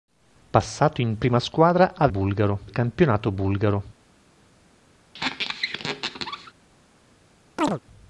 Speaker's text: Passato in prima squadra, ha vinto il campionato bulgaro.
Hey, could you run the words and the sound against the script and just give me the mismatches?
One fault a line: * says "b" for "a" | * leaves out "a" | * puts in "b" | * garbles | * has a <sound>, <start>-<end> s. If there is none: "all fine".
* says "bulgaro" for "vinto"
* has a squeak, 5.1-6.5 s
* has a chirp, 7.6-7.8 s